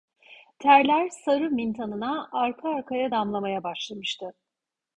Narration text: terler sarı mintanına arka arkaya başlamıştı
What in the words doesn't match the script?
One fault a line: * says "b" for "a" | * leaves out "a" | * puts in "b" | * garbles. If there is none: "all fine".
* puts in "damlamaya"